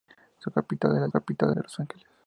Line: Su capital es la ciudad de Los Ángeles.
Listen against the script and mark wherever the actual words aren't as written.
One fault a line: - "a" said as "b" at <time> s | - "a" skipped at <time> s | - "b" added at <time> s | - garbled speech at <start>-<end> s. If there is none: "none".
- "ciudad" said as "capital" at 1.1 s